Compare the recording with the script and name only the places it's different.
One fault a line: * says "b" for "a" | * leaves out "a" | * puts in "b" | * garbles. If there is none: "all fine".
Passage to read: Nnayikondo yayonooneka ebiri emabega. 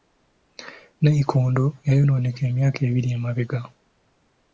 * puts in "emyaka"